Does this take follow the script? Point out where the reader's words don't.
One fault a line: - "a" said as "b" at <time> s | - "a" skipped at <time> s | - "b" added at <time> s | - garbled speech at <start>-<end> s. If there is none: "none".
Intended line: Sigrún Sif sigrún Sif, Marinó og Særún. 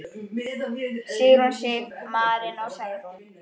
- "sigrún Sif" skipped at 1.9 s